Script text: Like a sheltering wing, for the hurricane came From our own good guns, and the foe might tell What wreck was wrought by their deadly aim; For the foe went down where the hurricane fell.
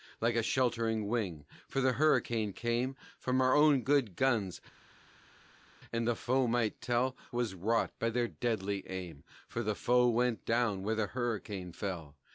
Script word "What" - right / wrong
wrong